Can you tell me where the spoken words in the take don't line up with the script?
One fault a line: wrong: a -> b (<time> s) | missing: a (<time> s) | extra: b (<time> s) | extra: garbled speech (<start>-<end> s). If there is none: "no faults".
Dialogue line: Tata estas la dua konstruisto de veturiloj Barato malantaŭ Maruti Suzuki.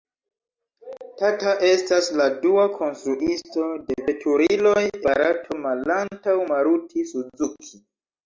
no faults